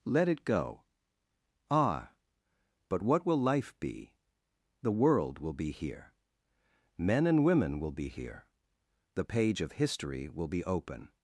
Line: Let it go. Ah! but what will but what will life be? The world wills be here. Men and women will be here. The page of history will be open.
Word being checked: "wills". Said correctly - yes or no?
no